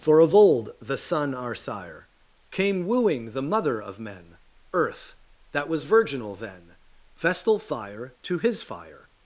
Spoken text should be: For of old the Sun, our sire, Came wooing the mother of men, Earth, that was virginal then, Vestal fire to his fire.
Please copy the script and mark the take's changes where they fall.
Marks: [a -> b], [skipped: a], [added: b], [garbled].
For of old the Sun, our sire, Came wooing the mother of men, Earth, that was virginal then, Vestal fire to his fire.